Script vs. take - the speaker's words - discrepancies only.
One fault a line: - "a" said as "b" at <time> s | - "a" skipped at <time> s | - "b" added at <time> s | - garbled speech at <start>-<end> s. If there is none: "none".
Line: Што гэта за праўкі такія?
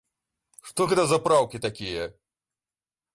none